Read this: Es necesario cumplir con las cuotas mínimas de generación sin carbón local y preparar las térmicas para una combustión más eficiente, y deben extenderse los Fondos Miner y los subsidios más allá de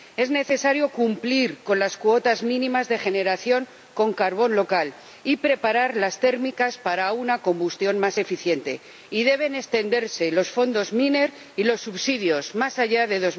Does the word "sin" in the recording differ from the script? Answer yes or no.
yes